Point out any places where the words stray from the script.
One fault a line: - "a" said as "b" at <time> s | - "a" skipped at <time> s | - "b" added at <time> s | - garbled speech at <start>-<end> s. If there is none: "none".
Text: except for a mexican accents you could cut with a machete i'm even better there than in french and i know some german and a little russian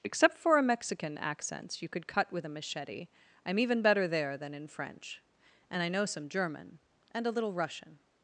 none